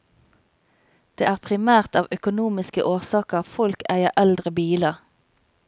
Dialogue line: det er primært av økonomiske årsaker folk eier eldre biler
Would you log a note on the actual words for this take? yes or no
no